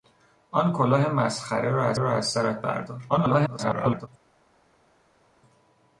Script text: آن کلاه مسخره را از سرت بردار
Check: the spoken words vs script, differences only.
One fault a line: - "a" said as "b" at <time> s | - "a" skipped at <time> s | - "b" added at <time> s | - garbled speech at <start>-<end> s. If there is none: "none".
- "را از" added at 2.0 s
- garbled speech at 3.1-4.1 s